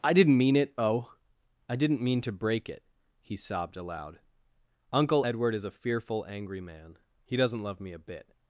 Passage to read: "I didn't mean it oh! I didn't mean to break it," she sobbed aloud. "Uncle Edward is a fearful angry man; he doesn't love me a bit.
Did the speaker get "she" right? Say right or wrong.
wrong